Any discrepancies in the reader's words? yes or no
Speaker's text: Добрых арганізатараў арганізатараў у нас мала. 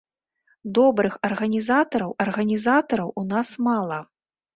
no